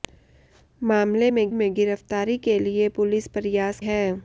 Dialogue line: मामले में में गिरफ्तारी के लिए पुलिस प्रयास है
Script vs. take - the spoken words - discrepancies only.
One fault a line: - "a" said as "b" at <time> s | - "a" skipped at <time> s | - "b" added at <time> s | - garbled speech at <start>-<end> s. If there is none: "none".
none